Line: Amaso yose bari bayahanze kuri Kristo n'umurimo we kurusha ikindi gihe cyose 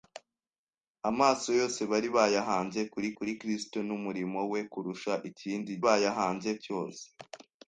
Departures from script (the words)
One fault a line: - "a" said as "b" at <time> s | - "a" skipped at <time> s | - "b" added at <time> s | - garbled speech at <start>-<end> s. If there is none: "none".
- "kuri" added at 3.2 s
- "gihe" said as "bayahanze" at 5.8 s